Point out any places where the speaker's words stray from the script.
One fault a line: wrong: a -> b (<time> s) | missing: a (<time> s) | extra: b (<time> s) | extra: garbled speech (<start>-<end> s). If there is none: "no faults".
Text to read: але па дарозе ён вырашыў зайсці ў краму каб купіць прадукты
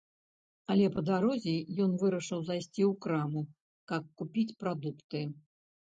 no faults